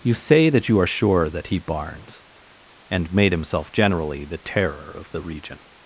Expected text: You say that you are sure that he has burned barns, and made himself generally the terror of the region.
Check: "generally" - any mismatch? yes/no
no